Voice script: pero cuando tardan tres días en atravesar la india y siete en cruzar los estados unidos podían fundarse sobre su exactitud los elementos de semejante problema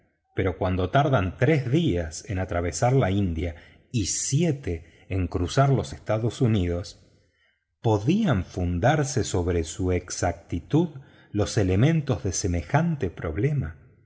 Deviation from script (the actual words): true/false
false